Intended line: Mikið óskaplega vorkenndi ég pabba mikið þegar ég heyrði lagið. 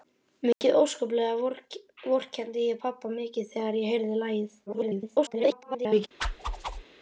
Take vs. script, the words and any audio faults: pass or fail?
fail